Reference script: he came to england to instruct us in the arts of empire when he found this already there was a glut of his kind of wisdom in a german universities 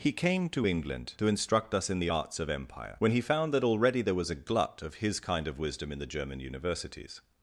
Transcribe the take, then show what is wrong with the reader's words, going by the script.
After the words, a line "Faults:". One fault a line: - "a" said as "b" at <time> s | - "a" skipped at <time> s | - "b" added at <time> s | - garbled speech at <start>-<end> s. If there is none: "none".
he came to england to instruct us in the arts of empire when he found that already there was a glut of his kind of wisdom in the german universities
Faults:
- "this" said as "that" at 3.5 s
- "a" said as "the" at 6.0 s